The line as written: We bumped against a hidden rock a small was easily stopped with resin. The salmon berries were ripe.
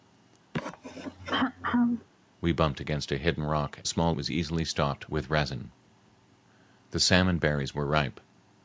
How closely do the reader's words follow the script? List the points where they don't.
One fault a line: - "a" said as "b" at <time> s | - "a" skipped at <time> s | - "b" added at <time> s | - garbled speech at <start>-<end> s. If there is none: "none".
none